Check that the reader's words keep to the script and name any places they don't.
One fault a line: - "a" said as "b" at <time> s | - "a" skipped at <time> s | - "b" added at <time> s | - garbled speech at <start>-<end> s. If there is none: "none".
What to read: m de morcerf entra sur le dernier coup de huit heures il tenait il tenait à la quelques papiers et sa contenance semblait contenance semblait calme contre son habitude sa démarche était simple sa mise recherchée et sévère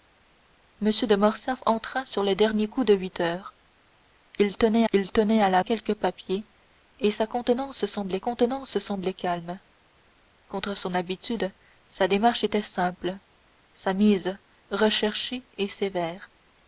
none